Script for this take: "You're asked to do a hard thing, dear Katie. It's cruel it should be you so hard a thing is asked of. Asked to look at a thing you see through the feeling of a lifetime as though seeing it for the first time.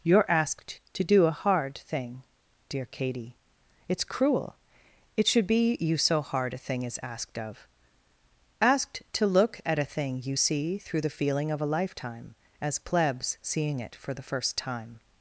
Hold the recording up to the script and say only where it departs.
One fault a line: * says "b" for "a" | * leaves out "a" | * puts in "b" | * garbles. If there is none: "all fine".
* says "plebs" for "though"